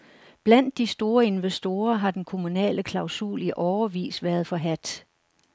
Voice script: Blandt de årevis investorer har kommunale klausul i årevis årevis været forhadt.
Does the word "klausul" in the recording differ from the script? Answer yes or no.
no